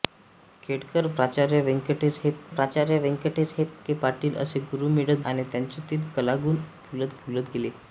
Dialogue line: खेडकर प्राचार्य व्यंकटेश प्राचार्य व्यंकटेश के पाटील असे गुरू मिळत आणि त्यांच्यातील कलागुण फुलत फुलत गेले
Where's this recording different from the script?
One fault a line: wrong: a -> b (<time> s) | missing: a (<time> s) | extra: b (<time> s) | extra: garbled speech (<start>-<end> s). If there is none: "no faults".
no faults